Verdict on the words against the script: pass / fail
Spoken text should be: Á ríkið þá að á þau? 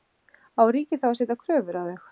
fail